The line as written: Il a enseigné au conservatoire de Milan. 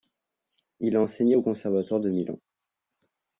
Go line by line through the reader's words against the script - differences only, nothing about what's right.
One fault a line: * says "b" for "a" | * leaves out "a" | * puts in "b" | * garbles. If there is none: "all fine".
all fine